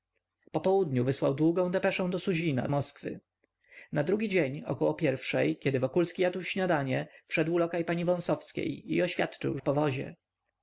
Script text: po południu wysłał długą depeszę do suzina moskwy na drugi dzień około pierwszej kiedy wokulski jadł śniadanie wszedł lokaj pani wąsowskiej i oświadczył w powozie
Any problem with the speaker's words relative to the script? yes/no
no